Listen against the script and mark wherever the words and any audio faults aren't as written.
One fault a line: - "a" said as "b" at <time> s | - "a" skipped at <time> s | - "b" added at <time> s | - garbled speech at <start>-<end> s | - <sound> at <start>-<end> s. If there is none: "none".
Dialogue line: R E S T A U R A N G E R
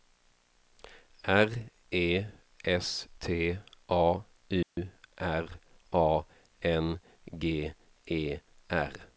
- dropout at 4.6-4.8 s